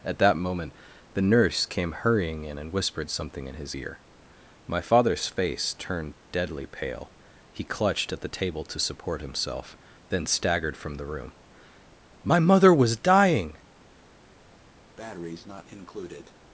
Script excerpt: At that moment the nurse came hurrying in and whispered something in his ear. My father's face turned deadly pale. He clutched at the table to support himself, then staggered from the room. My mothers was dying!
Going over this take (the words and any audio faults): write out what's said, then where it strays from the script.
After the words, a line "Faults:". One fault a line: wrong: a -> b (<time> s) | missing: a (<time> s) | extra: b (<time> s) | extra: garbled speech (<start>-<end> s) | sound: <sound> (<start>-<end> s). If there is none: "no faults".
At that moment the nurse came hurrying in and whispered something in his ear. My father's face turned deadly pale. He clutched at the table to support himself, then staggered from the room. My mother was dying!
Faults:
wrong: mothers -> mother (12.4 s)
sound: breath (15.0-16.3 s)